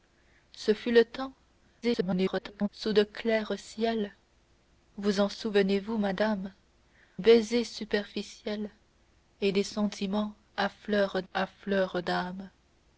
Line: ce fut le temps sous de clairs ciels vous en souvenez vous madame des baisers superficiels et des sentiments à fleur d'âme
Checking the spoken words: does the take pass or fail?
fail